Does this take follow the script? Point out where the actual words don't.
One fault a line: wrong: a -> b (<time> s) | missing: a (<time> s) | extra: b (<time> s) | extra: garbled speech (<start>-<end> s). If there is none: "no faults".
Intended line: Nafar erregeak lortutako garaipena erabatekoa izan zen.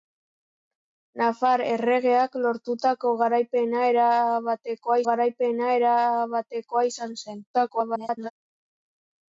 extra: garaipena erabatekoa (5.1 s)
extra: garbled speech (7.5-8.3 s)